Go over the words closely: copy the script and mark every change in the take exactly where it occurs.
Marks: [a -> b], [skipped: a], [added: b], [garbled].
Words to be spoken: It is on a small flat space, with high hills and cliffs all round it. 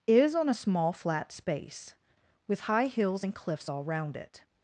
[skipped: It] is on a small flat space, with high hills and cliffs all round it.